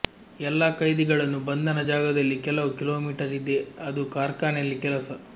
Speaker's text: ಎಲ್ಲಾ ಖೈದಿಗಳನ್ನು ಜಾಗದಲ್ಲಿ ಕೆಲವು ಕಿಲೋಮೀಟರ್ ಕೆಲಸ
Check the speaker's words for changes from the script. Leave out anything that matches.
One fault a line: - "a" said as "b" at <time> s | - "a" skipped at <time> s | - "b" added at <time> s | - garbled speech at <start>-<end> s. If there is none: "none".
- "ಬಂಧನ" added at 1.5 s
- "ಇದೆ ಅದು ಕಾರ್ಖಾನೆಯಲ್ಲಿ" added at 3.4 s